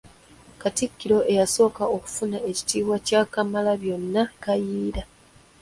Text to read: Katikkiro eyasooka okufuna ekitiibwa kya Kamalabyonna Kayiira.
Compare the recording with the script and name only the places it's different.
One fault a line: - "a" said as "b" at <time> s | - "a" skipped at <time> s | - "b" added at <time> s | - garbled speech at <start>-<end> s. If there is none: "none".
none